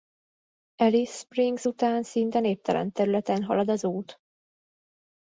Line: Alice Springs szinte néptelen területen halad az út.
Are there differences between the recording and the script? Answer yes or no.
yes